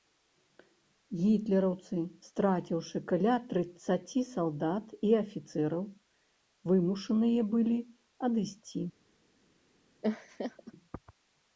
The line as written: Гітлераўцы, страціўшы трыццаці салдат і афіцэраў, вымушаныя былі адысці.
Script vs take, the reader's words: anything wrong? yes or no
yes